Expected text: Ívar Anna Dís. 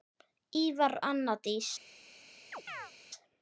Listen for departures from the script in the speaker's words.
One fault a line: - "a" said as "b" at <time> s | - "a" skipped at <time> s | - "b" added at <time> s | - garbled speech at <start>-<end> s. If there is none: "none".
none